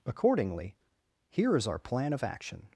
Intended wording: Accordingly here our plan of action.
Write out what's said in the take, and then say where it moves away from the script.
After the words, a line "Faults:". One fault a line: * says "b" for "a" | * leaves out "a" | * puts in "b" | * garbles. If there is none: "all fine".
Accordingly here is our plan of action.
Faults:
* puts in "is"